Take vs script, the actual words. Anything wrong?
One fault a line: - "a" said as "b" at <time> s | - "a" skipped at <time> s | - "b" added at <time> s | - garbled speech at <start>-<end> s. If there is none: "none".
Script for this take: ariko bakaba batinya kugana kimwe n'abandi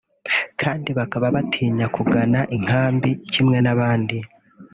- "ariko" said as "kandi" at 0.6 s
- "inkambi" added at 2.6 s